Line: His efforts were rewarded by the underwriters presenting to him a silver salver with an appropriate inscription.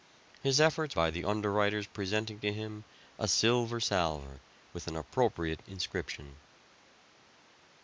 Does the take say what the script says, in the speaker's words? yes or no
no